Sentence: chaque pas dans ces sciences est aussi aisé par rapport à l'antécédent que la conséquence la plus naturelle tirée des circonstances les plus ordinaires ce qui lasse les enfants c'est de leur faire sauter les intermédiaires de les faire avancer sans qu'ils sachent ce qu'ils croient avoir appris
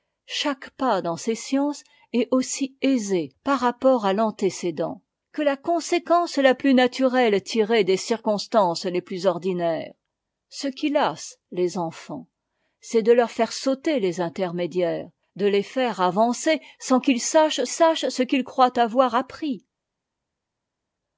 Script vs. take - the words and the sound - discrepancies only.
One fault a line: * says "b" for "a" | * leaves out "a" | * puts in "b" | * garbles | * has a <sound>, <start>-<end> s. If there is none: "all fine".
* puts in "sachent"